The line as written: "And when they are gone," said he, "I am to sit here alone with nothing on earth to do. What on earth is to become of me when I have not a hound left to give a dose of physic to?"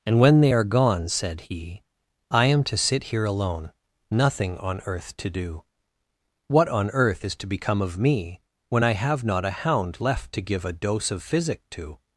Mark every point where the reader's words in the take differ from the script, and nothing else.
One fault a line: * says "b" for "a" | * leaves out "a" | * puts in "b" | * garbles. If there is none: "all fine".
* leaves out "with"